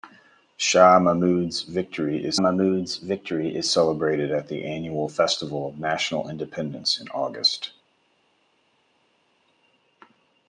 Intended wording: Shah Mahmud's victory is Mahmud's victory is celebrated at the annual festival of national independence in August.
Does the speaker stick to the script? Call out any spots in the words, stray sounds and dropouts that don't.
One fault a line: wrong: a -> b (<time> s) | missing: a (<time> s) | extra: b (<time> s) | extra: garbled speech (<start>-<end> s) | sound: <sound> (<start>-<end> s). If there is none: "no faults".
no faults